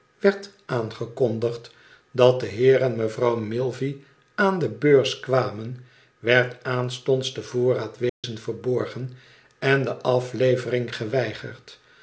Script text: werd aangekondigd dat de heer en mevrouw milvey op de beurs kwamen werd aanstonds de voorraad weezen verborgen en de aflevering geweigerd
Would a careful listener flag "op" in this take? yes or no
yes